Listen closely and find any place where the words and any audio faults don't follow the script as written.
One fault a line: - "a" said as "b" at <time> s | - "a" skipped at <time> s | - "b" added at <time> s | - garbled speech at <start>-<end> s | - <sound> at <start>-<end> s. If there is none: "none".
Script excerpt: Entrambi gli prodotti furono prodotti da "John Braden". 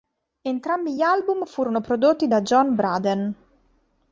- "prodotti" said as "album" at 1.0 s